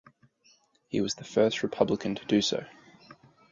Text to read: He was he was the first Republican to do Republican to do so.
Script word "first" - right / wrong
right